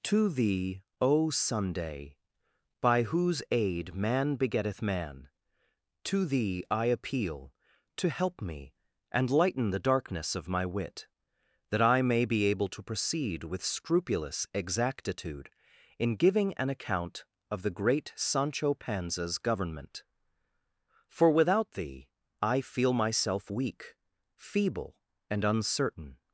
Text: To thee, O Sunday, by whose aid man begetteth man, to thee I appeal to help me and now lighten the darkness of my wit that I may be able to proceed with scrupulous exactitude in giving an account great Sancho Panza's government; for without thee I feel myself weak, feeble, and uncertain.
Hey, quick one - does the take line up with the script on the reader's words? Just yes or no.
no